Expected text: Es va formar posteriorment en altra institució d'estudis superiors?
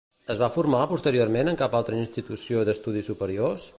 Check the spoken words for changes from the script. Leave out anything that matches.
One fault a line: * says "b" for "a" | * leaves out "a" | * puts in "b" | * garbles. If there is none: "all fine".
* puts in "cap"